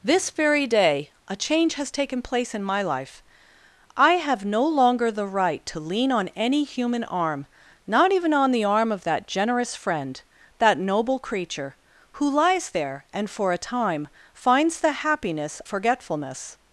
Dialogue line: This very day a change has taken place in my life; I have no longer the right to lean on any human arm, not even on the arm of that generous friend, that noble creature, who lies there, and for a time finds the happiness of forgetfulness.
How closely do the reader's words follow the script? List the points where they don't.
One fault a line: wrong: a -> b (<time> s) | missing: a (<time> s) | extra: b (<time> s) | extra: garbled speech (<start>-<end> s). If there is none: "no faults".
missing: of (15.6 s)